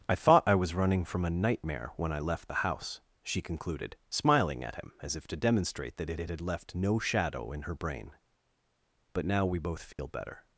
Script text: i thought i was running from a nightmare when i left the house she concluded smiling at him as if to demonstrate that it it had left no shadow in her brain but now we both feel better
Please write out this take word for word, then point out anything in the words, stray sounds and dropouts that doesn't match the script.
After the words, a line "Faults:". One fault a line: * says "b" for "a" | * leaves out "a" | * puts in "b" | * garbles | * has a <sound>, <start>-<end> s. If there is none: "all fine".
i thought i was running from a nightmare when i left the house she concluded smiling at him as if to demonstrate that it it had left no shadow in her brain but now we both feel better
Faults:
* has a dropout, 9.9-10.0 s